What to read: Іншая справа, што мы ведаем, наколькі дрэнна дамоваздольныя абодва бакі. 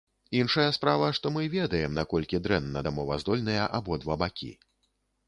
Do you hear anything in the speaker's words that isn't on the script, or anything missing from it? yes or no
no